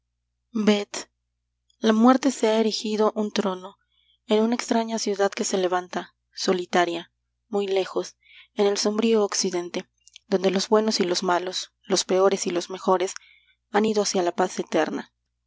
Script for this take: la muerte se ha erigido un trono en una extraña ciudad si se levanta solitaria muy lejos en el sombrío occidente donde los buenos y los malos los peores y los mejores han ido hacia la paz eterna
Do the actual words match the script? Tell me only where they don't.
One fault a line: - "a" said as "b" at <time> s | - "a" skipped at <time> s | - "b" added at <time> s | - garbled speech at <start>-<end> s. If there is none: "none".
- "si" said as "que" at 5.3 s